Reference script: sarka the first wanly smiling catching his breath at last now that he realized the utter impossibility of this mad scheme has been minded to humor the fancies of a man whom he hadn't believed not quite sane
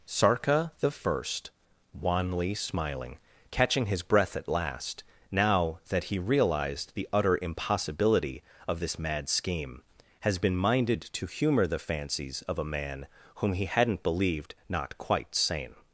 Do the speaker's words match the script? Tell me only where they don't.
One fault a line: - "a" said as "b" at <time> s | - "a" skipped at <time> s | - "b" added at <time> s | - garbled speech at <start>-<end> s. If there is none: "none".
none